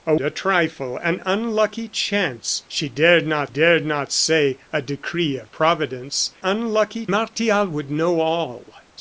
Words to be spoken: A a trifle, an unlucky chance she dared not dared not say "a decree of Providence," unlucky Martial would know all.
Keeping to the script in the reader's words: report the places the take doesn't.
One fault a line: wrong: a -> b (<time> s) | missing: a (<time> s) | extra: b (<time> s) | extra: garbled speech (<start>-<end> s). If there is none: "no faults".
no faults